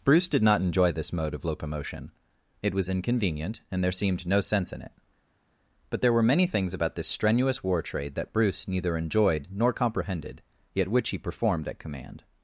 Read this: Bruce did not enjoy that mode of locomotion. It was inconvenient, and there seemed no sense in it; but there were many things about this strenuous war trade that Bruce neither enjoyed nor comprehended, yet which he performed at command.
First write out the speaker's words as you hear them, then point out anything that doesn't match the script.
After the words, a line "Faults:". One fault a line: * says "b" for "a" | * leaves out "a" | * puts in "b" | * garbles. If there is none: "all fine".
Bruce did not enjoy this mode of locomotion. It was inconvenient, and there seemed no sense in it; but there were many things about this strenuous war trade that Bruce neither enjoyed nor comprehended, yet which he performed at command.
Faults:
* says "this" for "that"